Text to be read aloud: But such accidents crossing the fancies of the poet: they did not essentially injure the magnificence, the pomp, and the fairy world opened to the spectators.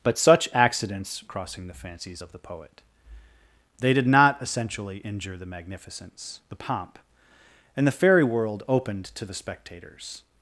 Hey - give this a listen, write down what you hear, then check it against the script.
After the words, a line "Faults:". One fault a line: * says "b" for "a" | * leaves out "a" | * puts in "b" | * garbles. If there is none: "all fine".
But such accidents crossing the fancies of the poet: they did not essentially injure the magnificence, the pomp, and the fairy world opened to the spectators.
Faults:
all fine